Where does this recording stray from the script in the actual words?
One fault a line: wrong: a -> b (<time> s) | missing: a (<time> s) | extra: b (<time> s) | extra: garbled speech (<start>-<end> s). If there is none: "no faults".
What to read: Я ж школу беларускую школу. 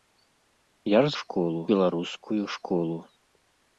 no faults